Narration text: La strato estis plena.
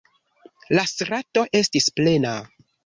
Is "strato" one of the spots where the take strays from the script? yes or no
no